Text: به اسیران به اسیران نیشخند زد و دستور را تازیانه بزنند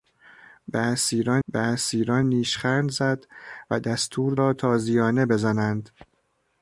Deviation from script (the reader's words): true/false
false